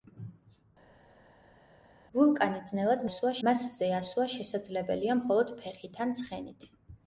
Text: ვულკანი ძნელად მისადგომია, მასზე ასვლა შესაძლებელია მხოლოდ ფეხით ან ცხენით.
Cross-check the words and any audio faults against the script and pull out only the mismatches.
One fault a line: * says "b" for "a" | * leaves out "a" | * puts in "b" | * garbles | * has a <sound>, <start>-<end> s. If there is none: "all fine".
* says "ასვლა" for "მისადგომია"